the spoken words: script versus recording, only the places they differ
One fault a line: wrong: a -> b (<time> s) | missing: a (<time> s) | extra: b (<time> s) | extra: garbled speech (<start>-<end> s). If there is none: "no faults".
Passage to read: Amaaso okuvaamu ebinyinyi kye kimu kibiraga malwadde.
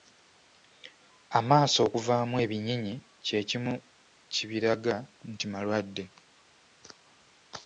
extra: nti (5.3 s)